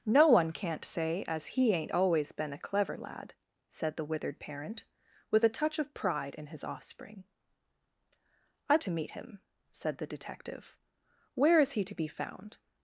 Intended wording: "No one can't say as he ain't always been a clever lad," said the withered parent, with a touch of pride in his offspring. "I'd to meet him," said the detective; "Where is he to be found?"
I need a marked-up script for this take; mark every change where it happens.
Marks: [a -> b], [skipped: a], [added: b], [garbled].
"No one can't say as he ain't always been a clever lad," said the withered parent, with a touch of pride in his offspring. "I'd to meet him," said the detective; "Where is he to be found?"